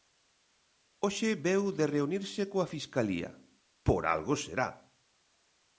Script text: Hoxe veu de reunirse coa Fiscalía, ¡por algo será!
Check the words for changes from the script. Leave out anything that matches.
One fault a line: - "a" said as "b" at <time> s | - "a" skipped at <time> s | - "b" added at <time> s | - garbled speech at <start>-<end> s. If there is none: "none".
none